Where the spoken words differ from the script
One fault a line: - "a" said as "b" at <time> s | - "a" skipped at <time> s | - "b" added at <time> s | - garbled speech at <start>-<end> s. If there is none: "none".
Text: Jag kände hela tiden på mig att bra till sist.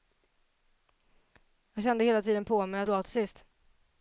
none